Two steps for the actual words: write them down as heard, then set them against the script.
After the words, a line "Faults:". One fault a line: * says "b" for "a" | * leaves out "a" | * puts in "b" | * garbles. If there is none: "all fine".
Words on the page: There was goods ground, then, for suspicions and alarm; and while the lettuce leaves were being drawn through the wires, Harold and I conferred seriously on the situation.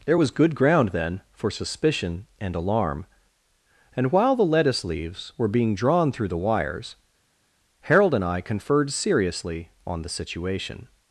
There was good ground, then, for suspicion and alarm; and while the lettuce leaves were being drawn through the wires, Harold and I conferred seriously on the situation.
Faults:
* says "good" for "goods"
* says "suspicion" for "suspicions"